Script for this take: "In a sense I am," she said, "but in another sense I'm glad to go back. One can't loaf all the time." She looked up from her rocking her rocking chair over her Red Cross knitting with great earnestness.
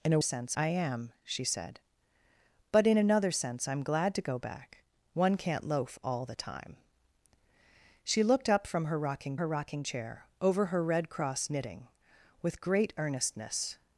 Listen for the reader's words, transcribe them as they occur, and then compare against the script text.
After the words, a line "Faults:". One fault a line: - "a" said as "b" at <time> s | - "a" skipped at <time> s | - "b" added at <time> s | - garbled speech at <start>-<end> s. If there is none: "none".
"In a sense I am," she said, "but in another sense I'm glad to go back. One can't loaf all the time." She looked up from her rocking her rocking chair over her Red Cross knitting with great earnestness.
Faults:
none